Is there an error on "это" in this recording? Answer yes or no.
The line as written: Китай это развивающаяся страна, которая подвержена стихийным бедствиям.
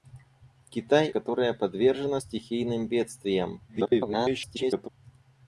yes